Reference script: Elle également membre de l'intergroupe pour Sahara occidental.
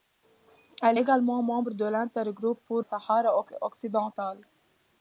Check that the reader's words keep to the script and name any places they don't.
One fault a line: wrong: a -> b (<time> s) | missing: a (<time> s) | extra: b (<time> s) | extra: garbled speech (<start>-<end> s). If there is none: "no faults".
no faults